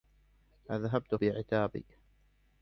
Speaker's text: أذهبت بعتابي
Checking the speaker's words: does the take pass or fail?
pass